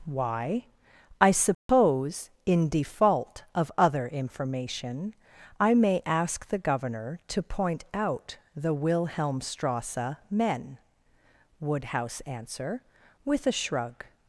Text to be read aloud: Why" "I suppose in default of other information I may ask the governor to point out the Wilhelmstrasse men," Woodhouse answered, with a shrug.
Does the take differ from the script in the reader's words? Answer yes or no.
yes